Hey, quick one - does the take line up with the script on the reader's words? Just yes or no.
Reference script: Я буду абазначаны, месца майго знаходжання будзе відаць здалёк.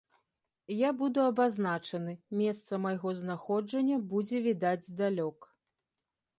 yes